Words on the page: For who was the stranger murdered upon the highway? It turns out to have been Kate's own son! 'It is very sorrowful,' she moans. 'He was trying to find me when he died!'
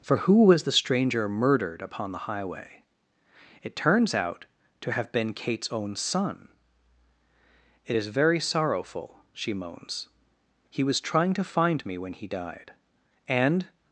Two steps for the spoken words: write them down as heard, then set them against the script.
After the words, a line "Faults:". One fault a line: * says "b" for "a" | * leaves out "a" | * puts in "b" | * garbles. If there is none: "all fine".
For who was the stranger murdered upon the highway? It turns out to have been Kate's own son! 'It is very sorrowful,' she moans. 'He was trying to find me when he died!' And
Faults:
* puts in "And"